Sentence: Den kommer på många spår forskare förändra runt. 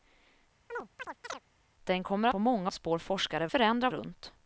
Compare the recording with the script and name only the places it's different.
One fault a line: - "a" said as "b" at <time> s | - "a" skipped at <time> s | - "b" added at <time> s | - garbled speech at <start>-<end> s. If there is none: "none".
none